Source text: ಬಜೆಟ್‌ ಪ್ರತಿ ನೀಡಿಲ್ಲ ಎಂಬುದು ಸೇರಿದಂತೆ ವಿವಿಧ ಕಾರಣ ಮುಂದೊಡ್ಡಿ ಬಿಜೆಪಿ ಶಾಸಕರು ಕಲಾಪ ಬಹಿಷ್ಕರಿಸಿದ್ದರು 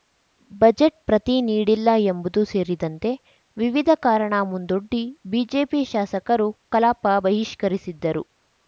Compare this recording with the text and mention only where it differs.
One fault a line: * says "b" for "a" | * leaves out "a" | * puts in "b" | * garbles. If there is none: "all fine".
all fine